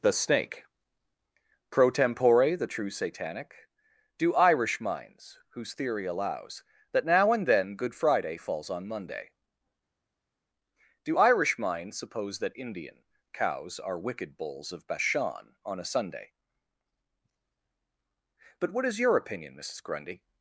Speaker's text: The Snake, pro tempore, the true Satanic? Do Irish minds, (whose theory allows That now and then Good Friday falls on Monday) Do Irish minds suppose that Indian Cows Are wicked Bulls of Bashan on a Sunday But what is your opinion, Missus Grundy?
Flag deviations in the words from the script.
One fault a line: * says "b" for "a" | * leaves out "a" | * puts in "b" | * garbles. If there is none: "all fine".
all fine